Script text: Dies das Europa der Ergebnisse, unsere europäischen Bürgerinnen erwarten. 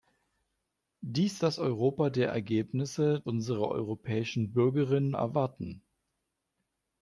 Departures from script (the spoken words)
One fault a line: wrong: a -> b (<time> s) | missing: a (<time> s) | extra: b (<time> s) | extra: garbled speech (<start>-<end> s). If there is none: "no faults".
no faults